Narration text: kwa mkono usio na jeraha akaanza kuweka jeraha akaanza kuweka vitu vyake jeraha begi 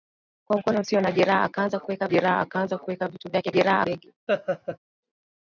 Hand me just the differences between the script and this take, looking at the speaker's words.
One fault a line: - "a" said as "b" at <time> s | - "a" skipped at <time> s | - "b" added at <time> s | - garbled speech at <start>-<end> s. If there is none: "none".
none